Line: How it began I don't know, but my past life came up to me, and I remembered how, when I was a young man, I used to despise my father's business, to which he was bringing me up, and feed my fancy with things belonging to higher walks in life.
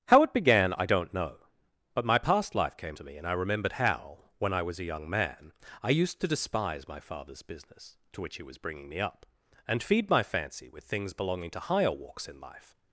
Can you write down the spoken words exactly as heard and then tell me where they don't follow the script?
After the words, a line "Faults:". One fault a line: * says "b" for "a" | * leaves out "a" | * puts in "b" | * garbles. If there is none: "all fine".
How it began I don't know, but my past life came to me, and I remembered how, when I was a young man, I used to despise my father's business, to which he was bringing me up, and feed my fancy with things belonging to higher walks in life.
Faults:
* leaves out "up"